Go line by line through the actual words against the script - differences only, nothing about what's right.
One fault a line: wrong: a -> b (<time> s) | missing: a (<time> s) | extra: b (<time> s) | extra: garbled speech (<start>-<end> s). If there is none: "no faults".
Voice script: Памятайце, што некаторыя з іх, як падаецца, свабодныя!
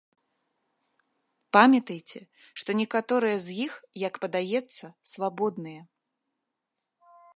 no faults